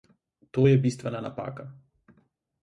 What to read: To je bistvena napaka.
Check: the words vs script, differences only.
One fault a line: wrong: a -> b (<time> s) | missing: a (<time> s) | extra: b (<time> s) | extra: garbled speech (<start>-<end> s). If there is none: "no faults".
no faults